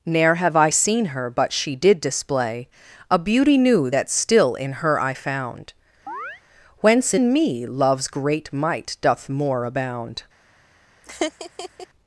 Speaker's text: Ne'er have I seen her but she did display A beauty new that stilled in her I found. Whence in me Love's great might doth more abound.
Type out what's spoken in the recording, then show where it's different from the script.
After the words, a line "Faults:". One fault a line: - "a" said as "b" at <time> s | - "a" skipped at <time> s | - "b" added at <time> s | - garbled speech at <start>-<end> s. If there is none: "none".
Ne'er have I seen her but she did display A beauty new that still in her I found. Whence in me Love's great might doth more abound.
Faults:
- "stilled" said as "still" at 4.1 s